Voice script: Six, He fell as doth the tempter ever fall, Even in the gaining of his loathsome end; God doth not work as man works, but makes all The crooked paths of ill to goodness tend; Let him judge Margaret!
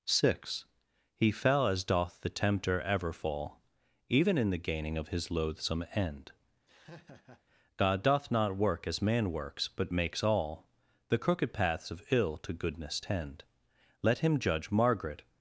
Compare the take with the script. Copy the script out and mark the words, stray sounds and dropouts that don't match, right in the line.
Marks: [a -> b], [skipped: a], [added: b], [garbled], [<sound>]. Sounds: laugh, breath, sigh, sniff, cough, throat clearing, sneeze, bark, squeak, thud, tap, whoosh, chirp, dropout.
Six, He fell as doth the tempter ever fall, Even in the gaining of his loathsome end; [laugh] God doth not work as man works, but makes all The crooked paths of ill to goodness tend; Let him judge Margaret!